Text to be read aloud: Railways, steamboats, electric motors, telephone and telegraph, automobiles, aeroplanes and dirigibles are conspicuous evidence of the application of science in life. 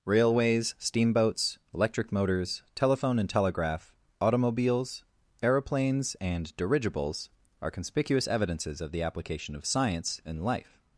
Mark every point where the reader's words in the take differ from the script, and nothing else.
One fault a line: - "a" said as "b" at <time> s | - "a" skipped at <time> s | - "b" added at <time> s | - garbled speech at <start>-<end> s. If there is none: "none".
- "evidence" said as "evidences" at 8.3 s